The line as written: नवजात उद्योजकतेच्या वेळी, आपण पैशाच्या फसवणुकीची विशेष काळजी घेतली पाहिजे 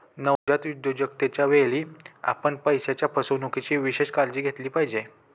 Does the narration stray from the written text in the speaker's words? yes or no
no